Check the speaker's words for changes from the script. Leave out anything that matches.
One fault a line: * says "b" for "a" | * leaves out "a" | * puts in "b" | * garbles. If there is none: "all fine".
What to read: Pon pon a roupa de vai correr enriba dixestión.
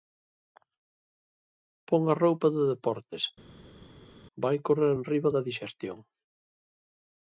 * leaves out "pon"
* puts in "deportes"
* puts in "da"